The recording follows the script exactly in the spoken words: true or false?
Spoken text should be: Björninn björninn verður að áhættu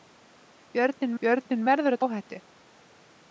true